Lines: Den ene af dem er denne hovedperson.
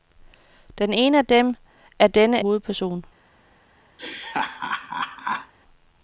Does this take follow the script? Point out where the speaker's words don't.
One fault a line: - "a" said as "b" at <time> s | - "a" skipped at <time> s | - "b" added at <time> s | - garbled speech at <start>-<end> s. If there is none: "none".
none